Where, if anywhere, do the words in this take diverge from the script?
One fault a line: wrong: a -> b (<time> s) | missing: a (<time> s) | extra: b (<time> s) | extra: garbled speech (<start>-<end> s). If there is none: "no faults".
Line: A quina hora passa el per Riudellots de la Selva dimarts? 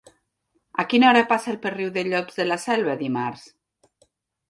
no faults